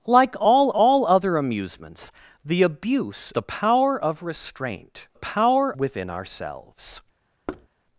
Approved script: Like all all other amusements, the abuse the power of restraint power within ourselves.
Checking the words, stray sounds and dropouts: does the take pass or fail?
fail